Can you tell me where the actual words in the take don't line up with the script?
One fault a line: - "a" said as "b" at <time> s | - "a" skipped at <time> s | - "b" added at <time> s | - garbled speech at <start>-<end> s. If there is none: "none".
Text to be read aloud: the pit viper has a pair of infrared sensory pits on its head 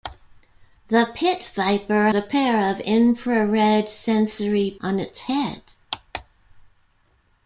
- "has" skipped at 2.1 s
- "pits" skipped at 4.8 s